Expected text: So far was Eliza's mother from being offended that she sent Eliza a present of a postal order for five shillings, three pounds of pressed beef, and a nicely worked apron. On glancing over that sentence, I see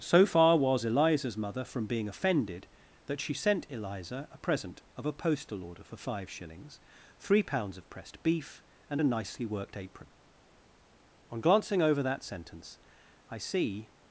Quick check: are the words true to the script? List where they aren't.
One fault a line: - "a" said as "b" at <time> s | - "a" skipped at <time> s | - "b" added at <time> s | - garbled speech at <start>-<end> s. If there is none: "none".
none